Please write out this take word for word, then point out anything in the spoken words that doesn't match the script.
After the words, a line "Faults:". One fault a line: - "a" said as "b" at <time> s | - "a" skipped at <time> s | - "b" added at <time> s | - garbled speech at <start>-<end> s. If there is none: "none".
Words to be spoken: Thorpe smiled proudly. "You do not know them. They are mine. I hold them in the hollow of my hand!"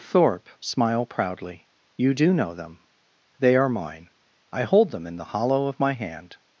Thorpe smile proudly. "You do know them. They are mine. I hold them in the hollow of my hand!"
Faults:
- "smiled" said as "smile" at 0.6 s
- "not" skipped at 2.3 s